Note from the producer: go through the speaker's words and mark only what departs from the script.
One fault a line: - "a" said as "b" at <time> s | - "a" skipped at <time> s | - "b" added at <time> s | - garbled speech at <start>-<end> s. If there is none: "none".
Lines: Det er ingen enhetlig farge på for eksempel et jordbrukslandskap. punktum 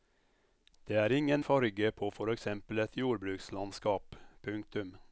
- "enhetlig" skipped at 1.4 s